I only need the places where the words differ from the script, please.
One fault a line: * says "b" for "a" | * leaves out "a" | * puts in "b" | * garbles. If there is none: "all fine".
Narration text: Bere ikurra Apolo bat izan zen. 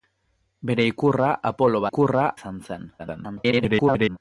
* says "ikurra" for "bat"
* garbles